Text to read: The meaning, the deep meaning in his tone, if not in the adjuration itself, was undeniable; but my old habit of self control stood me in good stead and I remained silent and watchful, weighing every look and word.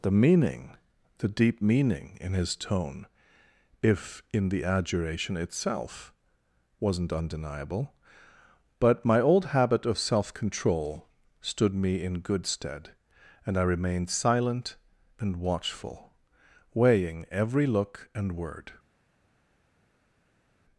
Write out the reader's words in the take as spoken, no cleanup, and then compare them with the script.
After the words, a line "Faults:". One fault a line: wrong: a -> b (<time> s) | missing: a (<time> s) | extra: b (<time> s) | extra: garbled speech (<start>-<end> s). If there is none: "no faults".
The meaning, the deep meaning in his tone, if in the adjuration itself, wasn't undeniable; but my old habit of self control stood me in good stead and I remained silent and watchful, weighing every look and word.
Faults:
missing: not (4.2 s)
wrong: was -> wasn't (6.8 s)